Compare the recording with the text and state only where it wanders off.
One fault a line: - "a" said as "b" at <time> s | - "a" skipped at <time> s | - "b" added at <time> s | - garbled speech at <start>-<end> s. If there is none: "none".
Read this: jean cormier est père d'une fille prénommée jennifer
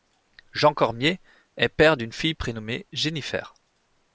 none